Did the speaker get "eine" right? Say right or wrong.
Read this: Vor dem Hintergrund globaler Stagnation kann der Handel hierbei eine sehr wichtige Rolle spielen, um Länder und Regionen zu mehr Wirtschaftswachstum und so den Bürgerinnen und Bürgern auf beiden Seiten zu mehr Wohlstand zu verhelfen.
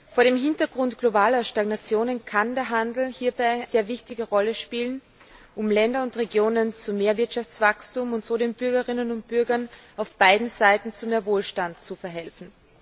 wrong